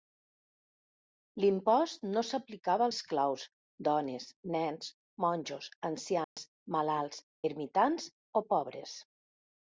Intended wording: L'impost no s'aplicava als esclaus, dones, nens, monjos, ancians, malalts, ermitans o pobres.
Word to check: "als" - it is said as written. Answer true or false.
false